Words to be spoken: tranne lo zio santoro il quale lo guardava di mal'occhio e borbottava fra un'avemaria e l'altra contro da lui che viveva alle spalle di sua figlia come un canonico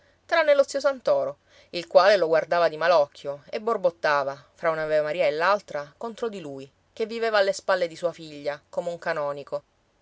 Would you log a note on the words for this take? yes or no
yes